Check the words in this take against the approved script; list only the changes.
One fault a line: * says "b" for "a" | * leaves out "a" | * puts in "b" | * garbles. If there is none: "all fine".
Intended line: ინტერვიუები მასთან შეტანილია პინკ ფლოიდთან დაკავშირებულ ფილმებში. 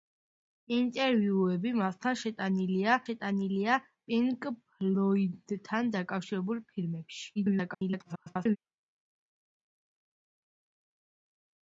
* puts in "შეტანილია"
* garbles